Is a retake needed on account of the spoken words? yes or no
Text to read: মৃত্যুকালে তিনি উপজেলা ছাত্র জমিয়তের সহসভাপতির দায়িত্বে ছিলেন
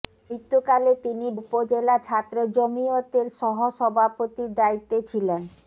no